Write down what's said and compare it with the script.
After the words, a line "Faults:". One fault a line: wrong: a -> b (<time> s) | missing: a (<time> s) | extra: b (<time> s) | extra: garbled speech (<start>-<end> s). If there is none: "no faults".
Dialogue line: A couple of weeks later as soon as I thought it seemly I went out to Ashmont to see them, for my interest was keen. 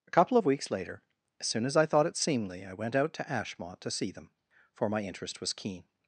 A couple of weeks later as soon as I thought it seemly I went out to Ashmont to see them, for my interest was keen.
Faults:
no faults